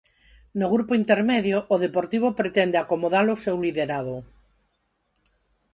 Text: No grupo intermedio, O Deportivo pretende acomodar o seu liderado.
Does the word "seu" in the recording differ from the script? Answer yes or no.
no